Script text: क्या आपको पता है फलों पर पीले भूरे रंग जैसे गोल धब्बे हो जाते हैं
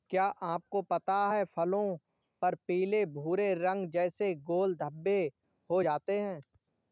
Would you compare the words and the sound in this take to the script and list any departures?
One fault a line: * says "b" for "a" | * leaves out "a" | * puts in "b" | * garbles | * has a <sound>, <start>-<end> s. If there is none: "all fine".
all fine